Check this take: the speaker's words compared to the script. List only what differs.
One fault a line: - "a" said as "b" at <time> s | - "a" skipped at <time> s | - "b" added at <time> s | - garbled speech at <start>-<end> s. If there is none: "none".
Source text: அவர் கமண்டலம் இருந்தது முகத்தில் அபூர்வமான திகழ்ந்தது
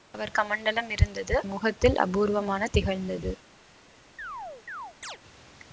none